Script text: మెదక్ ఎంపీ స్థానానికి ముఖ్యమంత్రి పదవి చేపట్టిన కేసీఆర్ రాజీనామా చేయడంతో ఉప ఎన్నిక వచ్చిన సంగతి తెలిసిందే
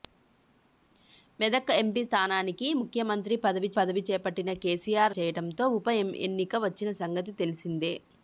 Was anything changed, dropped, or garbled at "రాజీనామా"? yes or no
yes